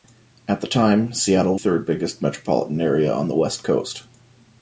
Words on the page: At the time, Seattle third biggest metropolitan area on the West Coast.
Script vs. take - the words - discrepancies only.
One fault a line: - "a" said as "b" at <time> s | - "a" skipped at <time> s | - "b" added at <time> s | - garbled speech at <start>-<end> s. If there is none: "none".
none